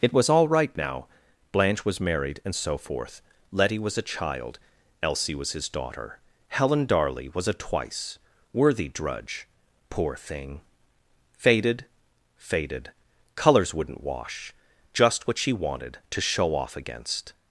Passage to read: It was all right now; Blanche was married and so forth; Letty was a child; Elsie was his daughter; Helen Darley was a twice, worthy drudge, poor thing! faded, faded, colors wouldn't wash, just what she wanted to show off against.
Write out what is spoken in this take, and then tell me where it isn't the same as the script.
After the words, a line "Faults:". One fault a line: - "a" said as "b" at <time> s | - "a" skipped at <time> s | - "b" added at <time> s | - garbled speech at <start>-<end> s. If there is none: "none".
It was all right now; Blanche was married and so forth; Letty was a child; Elsie was his daughter; Helen Darley was a twice, worthy drudge, poor thing! faded, faded, colors wouldn't wash, just what she wanted to show off against.
Faults:
none